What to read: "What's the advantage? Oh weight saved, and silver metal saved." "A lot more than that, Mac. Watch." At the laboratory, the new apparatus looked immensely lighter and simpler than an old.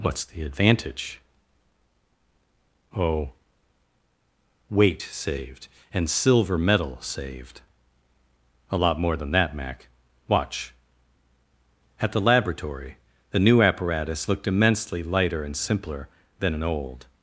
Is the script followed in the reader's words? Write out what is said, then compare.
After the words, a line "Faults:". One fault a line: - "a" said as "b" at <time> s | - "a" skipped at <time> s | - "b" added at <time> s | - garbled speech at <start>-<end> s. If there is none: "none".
"What's the advantage? Oh weight saved, and silver metal saved." "A lot more than that, Mac. Watch." At the laboratory, the new apparatus looked immensely lighter and simpler than an old.
Faults:
none